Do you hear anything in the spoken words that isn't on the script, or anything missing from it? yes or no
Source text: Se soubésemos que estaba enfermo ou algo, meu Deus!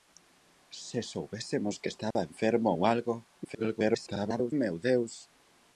yes